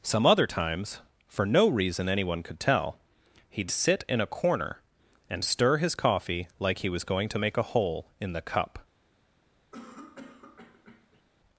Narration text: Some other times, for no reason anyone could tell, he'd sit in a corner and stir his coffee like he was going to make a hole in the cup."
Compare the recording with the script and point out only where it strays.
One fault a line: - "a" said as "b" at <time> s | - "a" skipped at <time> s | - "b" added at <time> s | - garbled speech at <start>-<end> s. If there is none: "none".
none